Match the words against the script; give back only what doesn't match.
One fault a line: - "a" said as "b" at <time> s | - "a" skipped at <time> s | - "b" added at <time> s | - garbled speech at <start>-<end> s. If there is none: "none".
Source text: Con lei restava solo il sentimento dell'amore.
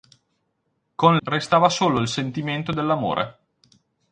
- "lei" skipped at 1.2 s